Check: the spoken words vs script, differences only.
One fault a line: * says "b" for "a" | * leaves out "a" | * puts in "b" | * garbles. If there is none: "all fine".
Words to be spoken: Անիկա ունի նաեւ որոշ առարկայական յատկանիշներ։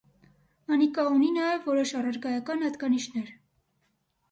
all fine